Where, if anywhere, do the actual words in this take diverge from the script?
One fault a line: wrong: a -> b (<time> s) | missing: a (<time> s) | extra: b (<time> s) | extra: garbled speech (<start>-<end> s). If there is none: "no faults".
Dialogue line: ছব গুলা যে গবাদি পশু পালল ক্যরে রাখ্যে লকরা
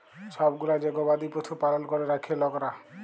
no faults